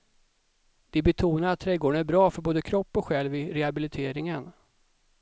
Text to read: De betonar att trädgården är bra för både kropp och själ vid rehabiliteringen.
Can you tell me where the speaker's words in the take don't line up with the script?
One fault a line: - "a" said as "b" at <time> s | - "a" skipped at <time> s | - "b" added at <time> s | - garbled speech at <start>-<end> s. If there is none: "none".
none